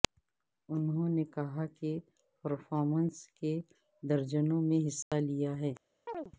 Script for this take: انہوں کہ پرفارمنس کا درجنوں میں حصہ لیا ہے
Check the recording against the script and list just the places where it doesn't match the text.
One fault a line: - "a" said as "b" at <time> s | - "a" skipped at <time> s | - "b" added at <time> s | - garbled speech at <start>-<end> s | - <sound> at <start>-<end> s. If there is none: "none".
- "نے کہا" added at 1.1 s
- "کا" said as "کے" at 3.4 s
- dropout at 5.0-5.1 s
- chirp at 6.1-6.3 s